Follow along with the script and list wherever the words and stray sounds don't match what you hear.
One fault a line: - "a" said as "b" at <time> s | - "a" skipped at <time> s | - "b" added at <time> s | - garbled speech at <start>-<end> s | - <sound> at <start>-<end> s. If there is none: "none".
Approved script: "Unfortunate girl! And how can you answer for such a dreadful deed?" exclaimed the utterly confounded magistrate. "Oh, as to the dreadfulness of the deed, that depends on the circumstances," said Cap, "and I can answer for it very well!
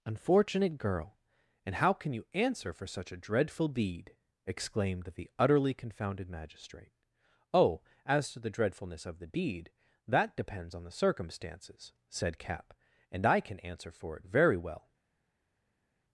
none